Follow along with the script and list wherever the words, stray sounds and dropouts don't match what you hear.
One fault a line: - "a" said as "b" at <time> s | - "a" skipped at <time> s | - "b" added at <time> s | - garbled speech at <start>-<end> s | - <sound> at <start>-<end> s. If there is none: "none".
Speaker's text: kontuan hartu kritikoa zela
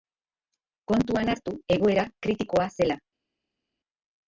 - "egoera" added at 1.8 s